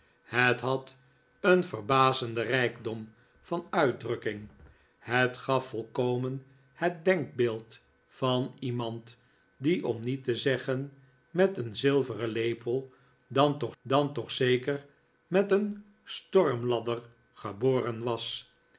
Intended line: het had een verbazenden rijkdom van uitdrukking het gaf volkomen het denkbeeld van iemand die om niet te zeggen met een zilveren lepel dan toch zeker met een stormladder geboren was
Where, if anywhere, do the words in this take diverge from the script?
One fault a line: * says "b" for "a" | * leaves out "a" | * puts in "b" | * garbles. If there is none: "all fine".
* puts in "dan toch"